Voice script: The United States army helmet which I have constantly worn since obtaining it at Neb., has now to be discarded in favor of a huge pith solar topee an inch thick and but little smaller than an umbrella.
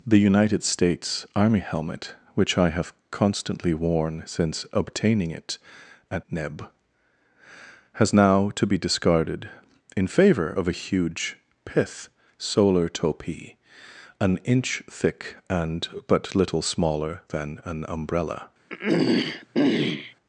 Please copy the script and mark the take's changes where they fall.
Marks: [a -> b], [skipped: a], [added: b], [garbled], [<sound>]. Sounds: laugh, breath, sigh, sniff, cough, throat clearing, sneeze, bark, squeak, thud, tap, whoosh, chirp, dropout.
The United States army helmet which I have constantly worn since obtaining it at Neb., has now to be discarded in favor of a huge pith solar topee an inch thick and but little smaller than an umbrella. [throat clearing]